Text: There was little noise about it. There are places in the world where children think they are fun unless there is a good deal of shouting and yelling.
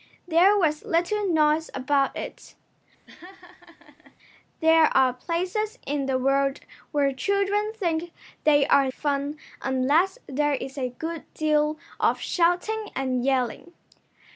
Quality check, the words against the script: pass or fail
pass